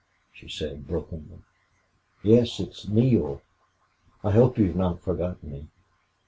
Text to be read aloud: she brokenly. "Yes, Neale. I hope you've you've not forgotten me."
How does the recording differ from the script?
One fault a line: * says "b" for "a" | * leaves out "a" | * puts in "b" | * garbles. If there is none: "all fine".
* puts in "said"
* puts in "it's"
* leaves out "you've"